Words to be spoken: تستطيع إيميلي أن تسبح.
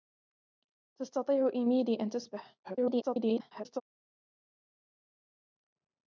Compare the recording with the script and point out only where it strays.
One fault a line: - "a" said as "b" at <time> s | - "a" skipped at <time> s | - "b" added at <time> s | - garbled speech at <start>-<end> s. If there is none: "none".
- garbled speech at 2.6-3.8 s